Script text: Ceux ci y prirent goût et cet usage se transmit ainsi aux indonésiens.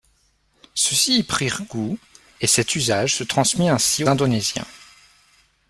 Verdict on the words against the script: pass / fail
fail